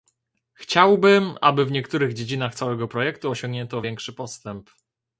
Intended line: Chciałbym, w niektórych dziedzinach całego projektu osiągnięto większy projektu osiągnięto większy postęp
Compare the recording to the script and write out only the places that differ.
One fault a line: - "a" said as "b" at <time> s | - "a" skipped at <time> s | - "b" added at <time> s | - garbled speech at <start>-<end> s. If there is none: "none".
- "aby" added at 1.4 s
- "projektu osiągnięto większy" skipped at 4.1 s